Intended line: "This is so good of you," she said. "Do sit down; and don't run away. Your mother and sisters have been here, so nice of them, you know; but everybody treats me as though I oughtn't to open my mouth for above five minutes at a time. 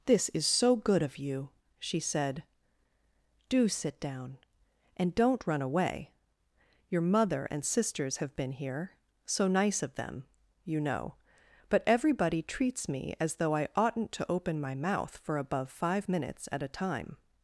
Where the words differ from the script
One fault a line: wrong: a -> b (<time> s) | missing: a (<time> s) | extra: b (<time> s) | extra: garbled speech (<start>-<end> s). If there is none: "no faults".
no faults